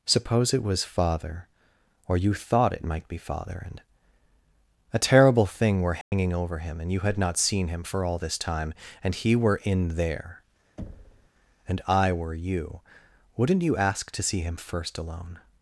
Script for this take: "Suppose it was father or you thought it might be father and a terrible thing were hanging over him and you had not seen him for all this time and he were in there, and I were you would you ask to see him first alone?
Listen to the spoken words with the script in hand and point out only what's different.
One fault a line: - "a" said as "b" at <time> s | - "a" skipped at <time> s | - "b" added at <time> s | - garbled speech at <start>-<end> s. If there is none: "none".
- "would" said as "wouldn't" at 13.4 s